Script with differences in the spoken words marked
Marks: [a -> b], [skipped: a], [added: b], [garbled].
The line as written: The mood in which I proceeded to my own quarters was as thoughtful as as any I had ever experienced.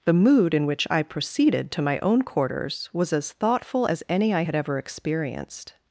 The mood in which I proceeded to my own quarters was as thoughtful as [skipped: as] any I had ever experienced.